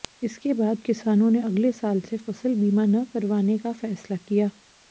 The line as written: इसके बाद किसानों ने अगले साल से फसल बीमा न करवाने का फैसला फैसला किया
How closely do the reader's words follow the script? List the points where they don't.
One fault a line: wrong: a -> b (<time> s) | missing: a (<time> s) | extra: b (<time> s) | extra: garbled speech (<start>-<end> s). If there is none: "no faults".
missing: फैसला (4.2 s)